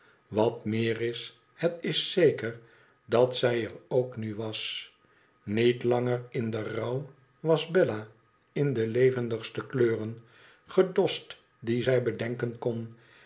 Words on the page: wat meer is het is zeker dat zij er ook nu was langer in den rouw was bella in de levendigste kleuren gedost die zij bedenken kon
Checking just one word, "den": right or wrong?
right